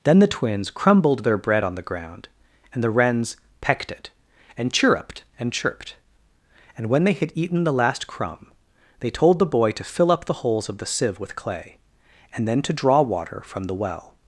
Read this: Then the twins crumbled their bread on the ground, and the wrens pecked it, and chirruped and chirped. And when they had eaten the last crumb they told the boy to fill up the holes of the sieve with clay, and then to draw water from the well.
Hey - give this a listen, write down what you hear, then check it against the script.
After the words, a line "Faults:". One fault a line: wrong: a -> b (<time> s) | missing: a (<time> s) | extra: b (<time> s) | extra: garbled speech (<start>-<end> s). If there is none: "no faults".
Then the twins crumbled their bread on the ground, and the wrens pecked it, and chirruped and chirped. And when they had eaten the last crumb they told the boy to fill up the holes of the sieve with clay, and then to draw water from the well.
Faults:
no faults